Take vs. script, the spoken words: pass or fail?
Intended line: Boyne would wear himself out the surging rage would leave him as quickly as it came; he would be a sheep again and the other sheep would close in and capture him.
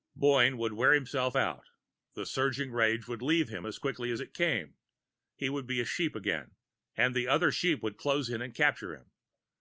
pass